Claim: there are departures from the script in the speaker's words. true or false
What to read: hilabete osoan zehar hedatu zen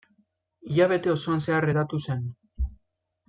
false